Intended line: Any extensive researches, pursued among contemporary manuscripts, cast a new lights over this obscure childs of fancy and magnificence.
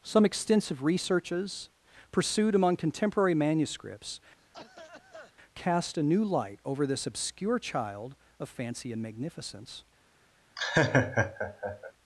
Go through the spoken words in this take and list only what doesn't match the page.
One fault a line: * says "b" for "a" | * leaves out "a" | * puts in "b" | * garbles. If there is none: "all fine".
* says "Some" for "Any"
* says "light" for "lights"
* says "child" for "childs"